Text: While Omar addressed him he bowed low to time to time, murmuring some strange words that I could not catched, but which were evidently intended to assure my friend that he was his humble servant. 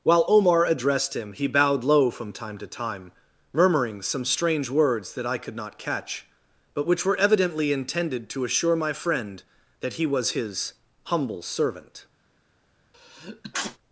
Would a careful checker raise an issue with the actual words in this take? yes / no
yes